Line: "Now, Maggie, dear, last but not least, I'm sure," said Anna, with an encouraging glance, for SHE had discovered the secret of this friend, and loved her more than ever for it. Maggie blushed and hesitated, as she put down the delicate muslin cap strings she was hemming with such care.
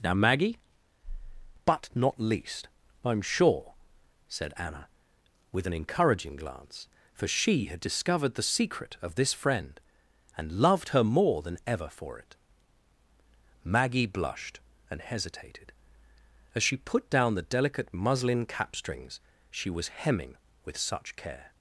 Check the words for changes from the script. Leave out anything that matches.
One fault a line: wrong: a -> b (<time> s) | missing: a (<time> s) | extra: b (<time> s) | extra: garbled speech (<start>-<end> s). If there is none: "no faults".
missing: dear last (0.6 s)